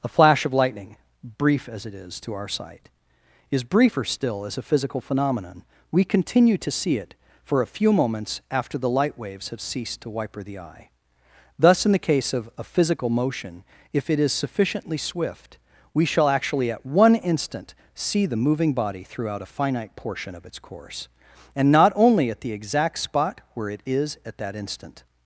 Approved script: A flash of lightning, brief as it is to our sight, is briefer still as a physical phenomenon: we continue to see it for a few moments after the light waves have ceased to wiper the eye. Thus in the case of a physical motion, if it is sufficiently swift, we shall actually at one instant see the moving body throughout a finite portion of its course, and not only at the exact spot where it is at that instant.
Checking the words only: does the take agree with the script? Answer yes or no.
yes